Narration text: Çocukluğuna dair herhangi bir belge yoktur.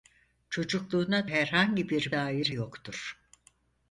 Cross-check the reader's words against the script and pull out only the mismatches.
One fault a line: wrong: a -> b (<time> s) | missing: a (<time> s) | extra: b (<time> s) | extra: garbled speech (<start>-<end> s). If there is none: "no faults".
missing: dair (1.3 s)
wrong: belge -> dair (2.1 s)